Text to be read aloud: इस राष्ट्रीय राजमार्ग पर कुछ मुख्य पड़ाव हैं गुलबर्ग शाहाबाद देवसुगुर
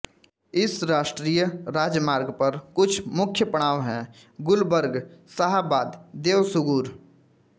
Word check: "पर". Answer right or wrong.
right